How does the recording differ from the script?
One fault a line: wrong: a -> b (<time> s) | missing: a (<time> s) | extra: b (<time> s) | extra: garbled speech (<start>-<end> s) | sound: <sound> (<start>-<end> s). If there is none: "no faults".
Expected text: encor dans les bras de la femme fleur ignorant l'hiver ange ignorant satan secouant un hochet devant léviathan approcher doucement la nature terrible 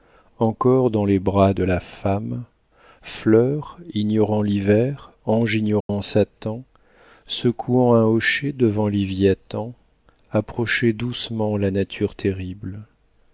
sound: dropout (5.8-5.9 s)